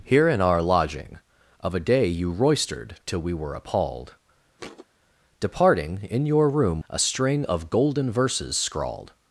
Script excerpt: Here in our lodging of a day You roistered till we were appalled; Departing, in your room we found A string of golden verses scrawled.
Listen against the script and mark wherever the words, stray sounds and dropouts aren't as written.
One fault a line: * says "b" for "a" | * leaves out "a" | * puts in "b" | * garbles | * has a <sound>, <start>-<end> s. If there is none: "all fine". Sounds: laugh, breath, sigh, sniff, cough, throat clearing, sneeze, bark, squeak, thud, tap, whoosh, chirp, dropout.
* has a thud, 4.6-4.9 s
* leaves out "we found"